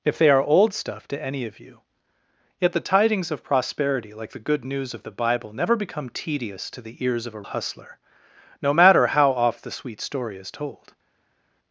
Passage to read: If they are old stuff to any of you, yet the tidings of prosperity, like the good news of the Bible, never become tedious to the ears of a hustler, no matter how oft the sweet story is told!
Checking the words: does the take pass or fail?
pass